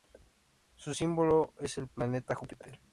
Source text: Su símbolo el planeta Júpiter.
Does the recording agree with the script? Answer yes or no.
no